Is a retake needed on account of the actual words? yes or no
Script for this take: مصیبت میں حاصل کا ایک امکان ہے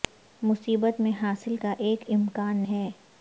no